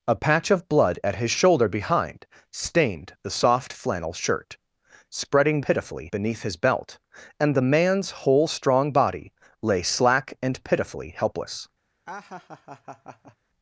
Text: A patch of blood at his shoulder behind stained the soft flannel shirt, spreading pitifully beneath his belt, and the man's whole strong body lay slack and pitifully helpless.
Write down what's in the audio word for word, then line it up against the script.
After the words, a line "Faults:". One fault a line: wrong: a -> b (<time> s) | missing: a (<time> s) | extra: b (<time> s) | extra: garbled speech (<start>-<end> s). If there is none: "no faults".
A patch of blood at his shoulder behind stained the soft flannel shirt, spreading pitifully beneath his belt, and the man's whole strong body lay slack and pitifully helpless.
Faults:
no faults